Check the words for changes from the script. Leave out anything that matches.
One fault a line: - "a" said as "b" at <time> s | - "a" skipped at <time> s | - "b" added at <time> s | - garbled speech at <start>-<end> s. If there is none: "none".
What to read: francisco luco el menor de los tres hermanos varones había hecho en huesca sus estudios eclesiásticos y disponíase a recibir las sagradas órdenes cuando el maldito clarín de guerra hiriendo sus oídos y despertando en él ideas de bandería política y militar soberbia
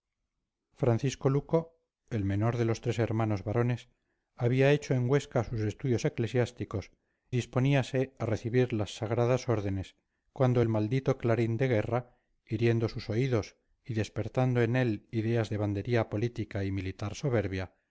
- "y" skipped at 6.9 s